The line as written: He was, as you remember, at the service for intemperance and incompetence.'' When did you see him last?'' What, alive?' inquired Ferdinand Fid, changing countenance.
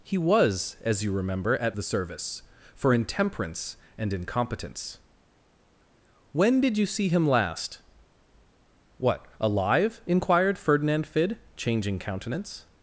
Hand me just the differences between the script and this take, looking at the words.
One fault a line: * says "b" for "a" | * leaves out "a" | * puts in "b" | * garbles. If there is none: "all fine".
all fine